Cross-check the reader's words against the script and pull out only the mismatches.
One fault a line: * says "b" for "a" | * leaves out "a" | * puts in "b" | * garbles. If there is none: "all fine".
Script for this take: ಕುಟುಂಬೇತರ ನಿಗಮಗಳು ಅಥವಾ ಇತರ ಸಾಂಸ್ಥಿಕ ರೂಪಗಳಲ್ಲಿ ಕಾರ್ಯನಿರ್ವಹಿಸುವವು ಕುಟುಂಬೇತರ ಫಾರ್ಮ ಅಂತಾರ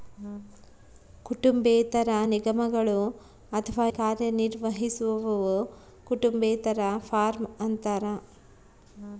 * leaves out "ಇತರ ಸಾಂಸ್ಥಿಕ ರೂಪಗಳಲ್ಲಿ"